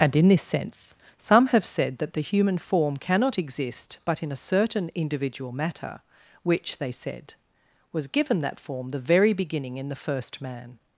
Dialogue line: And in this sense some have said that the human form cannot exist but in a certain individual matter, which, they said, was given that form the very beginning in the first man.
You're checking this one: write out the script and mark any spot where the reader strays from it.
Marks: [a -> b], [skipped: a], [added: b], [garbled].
And in this sense some have said that the human form cannot exist but in a certain individual matter, which, they said, was given that form the very beginning in the first man.